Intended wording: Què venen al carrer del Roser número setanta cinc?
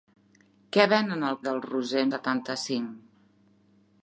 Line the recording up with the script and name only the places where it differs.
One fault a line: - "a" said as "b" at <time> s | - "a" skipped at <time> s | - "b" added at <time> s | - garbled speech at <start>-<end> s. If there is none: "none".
- "carrer" skipped at 1.4 s
- "número" skipped at 2.0 s